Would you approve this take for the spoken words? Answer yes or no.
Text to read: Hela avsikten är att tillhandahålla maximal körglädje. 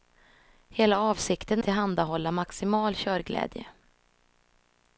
no